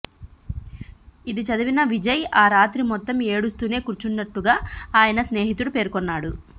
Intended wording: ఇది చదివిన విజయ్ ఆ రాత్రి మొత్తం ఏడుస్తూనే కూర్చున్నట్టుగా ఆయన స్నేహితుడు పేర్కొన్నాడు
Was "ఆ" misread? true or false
false